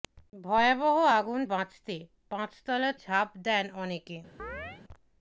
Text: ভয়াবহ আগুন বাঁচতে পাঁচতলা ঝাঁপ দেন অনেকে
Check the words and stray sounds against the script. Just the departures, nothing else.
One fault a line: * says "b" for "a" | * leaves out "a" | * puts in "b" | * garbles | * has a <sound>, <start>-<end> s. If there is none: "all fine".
* has a chirp, 4.4-4.8 s